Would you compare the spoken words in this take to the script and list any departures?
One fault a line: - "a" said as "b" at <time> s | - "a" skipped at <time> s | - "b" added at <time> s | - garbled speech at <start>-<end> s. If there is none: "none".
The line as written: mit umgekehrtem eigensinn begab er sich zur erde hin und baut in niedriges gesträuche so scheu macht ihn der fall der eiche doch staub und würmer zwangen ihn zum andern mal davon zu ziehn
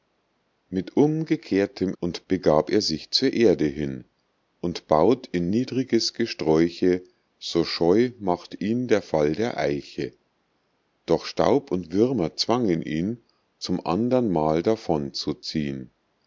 - "eigensinn" said as "und" at 2.0 s